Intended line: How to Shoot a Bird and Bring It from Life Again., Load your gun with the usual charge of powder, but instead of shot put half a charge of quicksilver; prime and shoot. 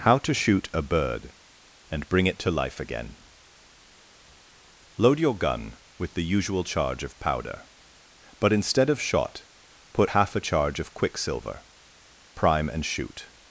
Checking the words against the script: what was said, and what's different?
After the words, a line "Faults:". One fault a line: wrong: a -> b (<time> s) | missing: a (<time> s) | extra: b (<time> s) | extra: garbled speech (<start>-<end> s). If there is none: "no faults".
How to Shoot a Bird and Bring It to Life Again., Load your gun with the usual charge of powder, but instead of shot put half a charge of quicksilver; prime and shoot.
Faults:
wrong: from -> to (2.4 s)